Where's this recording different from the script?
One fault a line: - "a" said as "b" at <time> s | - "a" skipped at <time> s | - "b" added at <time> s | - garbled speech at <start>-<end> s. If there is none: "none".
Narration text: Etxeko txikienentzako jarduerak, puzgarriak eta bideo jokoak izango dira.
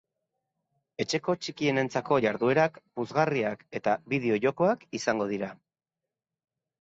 none